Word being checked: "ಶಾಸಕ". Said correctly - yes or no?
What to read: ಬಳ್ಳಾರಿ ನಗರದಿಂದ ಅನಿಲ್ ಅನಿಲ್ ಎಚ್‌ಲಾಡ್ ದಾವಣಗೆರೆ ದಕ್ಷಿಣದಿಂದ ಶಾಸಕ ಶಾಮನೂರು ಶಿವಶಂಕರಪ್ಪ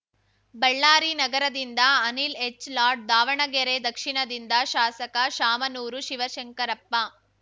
yes